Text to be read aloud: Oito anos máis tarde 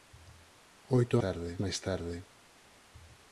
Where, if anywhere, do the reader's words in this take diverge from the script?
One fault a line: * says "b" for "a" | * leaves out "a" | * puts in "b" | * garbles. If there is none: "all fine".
* says "tarde" for "anos"